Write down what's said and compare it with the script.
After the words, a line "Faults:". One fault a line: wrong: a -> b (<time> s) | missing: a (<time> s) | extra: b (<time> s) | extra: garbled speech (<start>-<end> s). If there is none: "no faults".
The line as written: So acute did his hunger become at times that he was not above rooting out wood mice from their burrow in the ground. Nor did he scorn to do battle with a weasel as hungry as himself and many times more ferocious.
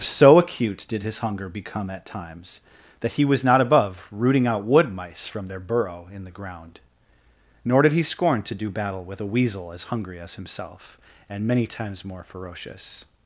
So acute did his hunger become at times that he was not above rooting out wood mice from their burrow in the ground. Nor did he scorn to do battle with a weasel as hungry as himself and many times more ferocious.
Faults:
no faults